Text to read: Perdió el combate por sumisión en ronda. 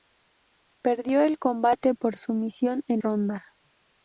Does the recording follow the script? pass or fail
pass